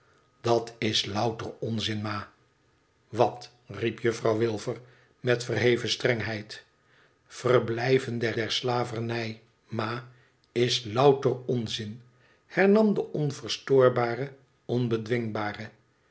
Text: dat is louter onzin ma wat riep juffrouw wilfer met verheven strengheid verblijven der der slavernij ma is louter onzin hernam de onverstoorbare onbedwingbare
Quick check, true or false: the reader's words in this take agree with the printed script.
true